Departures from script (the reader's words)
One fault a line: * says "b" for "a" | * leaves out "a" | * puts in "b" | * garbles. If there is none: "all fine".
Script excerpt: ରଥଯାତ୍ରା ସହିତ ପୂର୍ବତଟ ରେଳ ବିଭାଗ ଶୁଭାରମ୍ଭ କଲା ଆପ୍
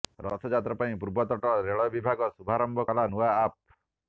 * says "ପାଇଁ" for "ସହିତ"
* puts in "ନୂଆ"